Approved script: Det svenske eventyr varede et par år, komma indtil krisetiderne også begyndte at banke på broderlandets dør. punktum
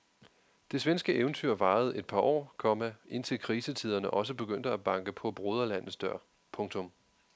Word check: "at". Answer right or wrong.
right